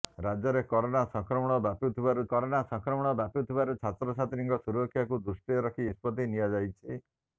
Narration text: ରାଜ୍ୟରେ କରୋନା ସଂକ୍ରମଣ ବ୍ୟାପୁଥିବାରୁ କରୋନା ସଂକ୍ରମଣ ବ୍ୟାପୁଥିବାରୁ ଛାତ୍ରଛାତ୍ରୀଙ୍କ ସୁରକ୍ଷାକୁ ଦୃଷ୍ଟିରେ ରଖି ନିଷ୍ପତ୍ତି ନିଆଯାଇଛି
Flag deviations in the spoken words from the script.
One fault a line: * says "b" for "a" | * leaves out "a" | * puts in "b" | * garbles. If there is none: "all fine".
all fine